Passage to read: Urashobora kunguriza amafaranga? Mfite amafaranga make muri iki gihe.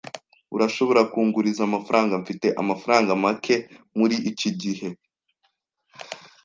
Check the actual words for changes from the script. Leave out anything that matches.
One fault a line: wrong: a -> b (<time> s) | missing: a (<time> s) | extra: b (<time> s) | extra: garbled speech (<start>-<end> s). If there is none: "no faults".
no faults